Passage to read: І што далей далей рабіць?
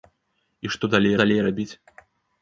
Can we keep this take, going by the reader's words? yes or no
yes